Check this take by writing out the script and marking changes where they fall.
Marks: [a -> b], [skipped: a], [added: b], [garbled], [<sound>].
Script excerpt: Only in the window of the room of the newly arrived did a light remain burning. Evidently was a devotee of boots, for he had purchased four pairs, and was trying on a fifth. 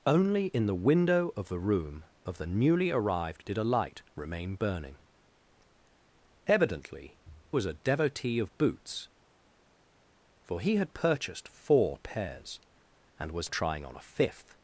Only in the window of the room of the newly arrived did a light remain burning. Evidently was a devotee of boots, for he had purchased four pairs, and was trying on a fifth.